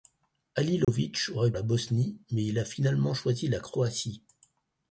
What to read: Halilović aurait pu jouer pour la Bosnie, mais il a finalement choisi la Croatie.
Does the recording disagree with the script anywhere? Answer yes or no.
yes